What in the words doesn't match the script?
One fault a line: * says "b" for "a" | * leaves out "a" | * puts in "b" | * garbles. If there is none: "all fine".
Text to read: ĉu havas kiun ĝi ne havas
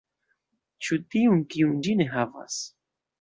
* says "tiun" for "havas"